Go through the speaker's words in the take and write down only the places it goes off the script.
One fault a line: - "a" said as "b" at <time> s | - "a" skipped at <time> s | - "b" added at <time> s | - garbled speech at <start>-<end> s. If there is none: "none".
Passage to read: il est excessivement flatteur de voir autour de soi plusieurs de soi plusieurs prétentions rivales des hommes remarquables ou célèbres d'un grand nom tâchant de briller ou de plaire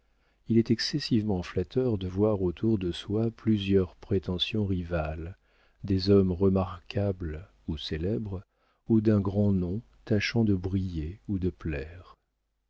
- "de soi plusieurs" skipped at 4.0 s
- "ou" added at 8.9 s